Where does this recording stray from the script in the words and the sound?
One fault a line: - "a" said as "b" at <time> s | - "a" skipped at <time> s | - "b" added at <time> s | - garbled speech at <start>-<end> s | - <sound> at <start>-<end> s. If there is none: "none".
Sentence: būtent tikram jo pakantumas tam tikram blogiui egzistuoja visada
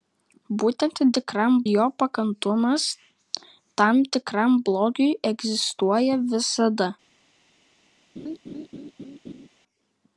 - laugh at 8.2-9.5 s